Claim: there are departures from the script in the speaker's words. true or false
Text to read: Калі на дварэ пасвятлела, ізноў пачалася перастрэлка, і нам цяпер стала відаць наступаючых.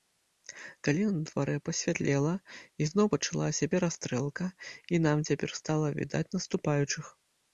false